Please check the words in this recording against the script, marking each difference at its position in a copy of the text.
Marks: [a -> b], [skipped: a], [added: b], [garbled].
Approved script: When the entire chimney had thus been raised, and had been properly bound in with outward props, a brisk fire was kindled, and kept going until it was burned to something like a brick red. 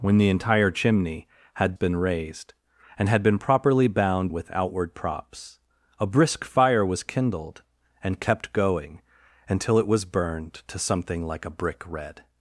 When the entire chimney had [skipped: thus] been raised, and had been properly bound [skipped: in] with outward props, a brisk fire was kindled, and kept going until it was burned to something like a brick red.